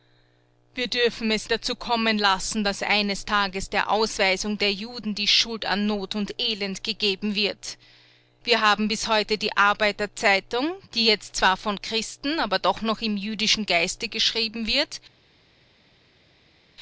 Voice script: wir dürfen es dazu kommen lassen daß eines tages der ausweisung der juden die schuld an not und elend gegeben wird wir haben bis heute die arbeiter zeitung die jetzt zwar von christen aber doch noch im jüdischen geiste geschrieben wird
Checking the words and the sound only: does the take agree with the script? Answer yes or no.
yes